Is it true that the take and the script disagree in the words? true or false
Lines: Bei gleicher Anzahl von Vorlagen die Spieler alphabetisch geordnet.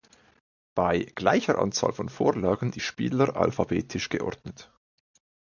false